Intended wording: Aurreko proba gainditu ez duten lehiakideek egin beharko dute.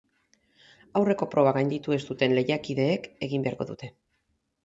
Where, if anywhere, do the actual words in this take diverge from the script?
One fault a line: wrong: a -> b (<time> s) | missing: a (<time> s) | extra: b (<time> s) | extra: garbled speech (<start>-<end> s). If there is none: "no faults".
no faults